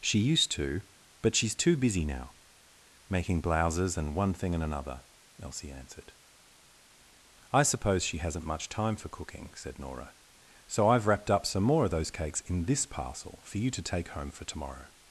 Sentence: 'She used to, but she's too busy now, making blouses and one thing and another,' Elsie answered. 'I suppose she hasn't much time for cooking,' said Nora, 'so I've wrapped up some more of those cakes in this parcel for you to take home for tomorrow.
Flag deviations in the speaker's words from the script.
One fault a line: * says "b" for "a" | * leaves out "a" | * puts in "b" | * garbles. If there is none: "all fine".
all fine